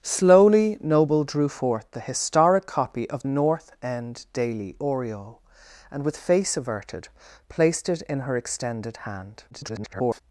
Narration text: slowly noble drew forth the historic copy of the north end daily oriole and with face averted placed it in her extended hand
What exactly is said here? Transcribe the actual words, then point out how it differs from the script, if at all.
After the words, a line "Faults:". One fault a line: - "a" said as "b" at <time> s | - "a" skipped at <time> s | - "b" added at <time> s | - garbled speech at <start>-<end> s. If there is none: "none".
slowly noble drew forth the historic copy of north end daily oriole and with face averted placed it in her extended hand [garbled]
Faults:
- "the" skipped at 3.2 s
- garbled speech at 9.5-10.2 s